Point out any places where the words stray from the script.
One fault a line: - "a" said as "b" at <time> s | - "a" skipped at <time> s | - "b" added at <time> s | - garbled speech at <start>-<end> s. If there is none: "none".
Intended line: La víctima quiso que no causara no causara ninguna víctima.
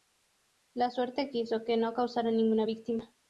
- "víctima" said as "suerte" at 0.9 s
- "no causara" skipped at 2.3 s